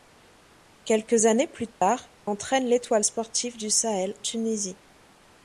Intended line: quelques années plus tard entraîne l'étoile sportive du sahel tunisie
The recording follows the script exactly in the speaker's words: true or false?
true